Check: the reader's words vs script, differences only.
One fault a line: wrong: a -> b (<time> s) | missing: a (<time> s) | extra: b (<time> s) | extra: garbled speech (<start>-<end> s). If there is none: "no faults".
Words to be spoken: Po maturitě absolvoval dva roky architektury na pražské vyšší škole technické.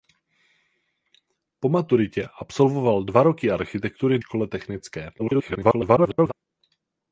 missing: na pražské vyšší (4.2 s)
extra: garbled speech (5.2-6.3 s)